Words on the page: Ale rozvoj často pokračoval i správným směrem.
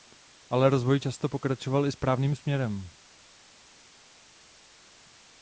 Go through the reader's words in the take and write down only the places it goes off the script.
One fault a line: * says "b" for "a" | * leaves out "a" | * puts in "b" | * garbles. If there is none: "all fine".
all fine